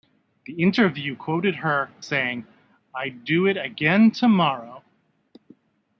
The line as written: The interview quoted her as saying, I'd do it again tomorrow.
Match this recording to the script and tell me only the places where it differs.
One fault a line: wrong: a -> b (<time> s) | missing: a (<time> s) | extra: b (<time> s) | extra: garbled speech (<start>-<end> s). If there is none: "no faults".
missing: as (1.9 s)